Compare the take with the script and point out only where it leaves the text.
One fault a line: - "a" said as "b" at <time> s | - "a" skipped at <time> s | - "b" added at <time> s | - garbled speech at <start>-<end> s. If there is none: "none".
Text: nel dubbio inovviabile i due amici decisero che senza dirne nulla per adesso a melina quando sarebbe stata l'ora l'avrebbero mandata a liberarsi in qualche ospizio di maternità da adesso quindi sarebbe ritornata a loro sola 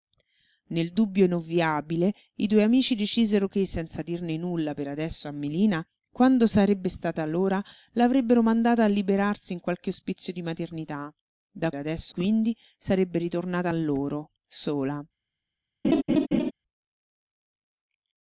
none